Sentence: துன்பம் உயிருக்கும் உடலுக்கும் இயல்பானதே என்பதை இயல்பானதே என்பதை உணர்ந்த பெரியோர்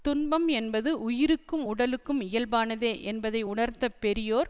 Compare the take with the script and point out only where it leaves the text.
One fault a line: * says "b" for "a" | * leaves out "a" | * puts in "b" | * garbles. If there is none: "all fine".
* puts in "என்பது"
* leaves out "இயல்பானதே என்பதை"